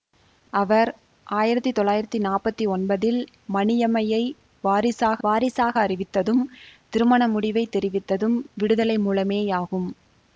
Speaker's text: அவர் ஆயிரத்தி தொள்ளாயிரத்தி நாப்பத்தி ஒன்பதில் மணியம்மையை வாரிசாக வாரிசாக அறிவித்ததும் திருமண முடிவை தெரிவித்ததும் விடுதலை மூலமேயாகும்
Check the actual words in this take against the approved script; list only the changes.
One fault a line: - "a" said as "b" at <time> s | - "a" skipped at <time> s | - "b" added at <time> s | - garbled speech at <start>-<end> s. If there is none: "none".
none